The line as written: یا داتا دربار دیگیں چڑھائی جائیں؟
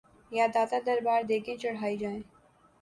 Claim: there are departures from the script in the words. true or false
false